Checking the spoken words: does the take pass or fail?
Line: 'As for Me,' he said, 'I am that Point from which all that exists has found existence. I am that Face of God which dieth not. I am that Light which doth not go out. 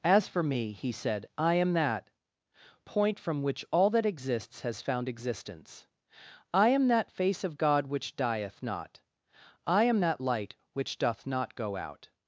pass